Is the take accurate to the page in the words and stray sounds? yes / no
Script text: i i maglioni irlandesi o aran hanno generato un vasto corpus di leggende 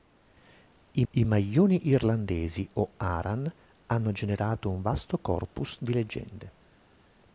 yes